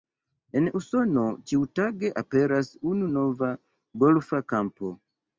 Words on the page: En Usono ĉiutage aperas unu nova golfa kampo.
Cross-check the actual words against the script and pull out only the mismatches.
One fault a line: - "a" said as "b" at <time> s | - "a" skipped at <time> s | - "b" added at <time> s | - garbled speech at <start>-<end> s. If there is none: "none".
none